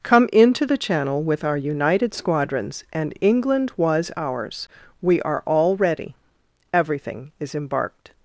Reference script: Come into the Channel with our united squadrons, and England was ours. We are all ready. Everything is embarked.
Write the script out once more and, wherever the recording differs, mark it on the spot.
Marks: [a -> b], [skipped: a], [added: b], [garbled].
Come into the Channel with our united squadrons, and England was ours. We are all ready. Everything is embarked.